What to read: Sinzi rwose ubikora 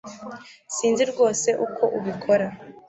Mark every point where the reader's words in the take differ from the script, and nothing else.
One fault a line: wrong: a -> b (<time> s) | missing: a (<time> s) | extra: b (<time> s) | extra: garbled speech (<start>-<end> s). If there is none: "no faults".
extra: uko (1.6 s)